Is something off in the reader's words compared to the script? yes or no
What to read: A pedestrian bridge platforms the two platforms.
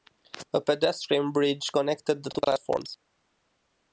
yes